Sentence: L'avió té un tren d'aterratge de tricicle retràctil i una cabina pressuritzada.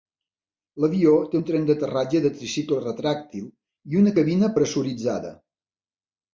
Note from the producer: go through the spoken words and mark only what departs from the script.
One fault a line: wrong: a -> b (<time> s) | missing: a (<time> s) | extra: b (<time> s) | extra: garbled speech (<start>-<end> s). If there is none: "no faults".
no faults